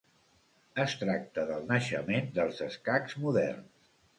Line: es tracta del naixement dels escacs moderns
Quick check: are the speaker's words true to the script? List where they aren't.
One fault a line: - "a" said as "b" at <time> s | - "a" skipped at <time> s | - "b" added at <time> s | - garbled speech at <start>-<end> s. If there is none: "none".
none